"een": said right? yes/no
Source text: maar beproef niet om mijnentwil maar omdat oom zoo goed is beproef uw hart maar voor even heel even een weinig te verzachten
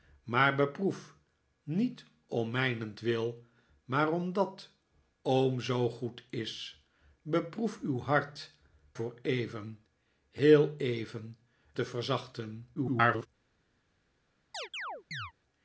no